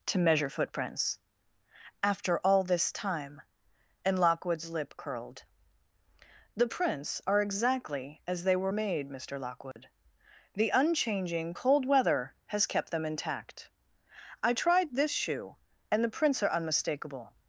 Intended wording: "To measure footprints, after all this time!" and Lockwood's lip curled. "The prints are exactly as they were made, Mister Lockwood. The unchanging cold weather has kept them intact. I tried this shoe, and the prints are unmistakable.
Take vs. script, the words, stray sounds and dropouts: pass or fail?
fail